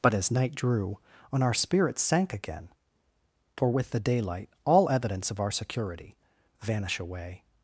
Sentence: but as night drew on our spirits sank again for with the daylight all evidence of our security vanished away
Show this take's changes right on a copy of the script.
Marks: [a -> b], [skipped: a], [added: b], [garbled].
but as night drew on our spirits sank again for with the daylight all evidence of our security [vanished -> vanish] away